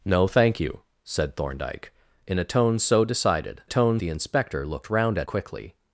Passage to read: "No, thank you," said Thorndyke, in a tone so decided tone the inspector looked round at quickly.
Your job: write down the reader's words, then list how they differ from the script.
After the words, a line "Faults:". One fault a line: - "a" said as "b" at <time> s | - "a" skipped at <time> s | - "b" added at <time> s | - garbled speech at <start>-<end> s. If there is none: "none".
"No, thank you," said Thorndyke, in a tone so decided tone the inspector looked round at quickly.
Faults:
none